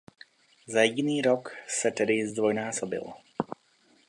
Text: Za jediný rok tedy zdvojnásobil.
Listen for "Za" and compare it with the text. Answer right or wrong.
right